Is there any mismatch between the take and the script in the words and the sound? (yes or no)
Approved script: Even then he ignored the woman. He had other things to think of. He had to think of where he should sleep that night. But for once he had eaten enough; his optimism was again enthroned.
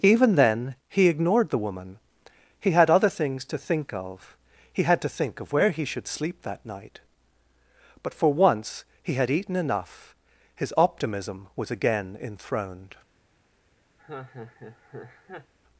yes